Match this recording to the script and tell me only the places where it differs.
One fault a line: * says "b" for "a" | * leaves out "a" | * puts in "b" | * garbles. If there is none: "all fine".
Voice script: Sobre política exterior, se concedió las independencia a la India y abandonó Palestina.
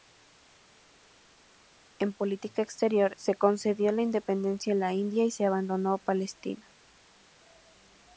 * says "En" for "Sobre"
* says "la" for "las"
* puts in "se"